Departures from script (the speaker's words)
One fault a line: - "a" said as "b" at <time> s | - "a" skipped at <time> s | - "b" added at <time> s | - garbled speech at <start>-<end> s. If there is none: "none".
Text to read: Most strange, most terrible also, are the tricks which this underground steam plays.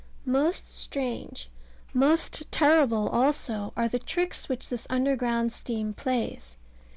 none